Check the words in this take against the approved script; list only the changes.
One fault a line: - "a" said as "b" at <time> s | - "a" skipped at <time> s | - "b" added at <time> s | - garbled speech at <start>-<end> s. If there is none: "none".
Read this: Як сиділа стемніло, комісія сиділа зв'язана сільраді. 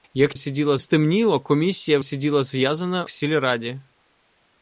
none